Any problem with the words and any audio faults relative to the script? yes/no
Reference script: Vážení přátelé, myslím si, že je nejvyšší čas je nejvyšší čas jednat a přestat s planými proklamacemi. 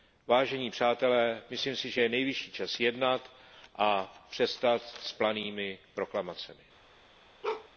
yes